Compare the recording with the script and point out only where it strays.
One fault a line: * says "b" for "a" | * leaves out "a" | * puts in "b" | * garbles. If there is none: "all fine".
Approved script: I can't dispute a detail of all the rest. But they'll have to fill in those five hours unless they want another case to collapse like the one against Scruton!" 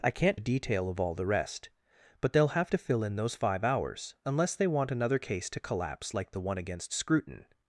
* leaves out "dispute"